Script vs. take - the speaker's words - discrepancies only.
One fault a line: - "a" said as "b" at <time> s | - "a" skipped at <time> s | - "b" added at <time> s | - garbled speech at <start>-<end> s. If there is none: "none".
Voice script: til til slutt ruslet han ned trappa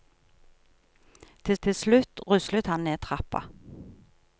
none